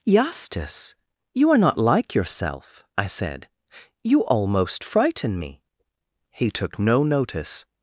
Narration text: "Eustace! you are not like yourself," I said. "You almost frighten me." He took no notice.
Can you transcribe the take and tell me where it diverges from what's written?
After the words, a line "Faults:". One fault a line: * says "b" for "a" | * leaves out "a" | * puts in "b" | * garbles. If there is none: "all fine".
"Eustace! you are not like yourself," I said. "You almost frighten me." He took no notice.
Faults:
all fine